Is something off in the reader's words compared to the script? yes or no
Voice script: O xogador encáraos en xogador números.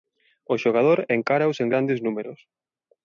yes